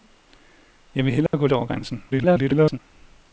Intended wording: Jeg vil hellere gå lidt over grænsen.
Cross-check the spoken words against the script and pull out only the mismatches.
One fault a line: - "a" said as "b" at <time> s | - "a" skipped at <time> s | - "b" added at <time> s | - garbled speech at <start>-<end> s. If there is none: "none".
- "lidt" skipped at 1.5 s
- garbled speech at 2.1-2.8 s